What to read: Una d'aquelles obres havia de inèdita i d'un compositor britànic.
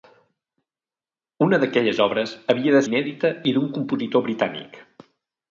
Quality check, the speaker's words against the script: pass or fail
pass